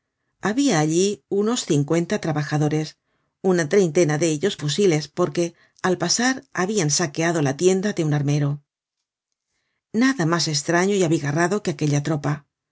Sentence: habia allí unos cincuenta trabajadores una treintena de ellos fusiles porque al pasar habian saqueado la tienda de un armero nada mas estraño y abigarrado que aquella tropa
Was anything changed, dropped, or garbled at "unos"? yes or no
no